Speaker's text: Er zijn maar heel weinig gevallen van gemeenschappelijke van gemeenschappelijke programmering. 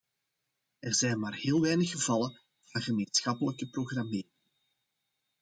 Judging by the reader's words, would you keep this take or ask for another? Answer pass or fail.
fail